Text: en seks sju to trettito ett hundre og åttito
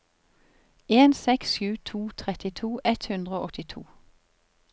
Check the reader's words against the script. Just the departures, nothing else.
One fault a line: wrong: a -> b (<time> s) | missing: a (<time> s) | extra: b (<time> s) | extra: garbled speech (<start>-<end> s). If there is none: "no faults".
no faults